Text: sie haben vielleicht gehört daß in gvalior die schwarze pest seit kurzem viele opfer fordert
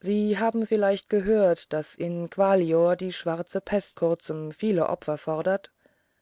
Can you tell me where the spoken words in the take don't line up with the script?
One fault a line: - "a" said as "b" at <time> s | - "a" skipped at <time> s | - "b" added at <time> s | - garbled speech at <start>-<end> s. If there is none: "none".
- "seit" skipped at 4.0 s